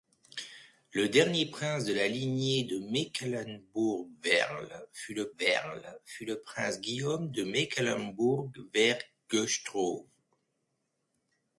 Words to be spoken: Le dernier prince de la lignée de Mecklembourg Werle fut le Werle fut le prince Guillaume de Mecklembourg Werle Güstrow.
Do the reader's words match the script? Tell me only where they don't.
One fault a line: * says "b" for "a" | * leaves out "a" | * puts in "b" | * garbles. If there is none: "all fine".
all fine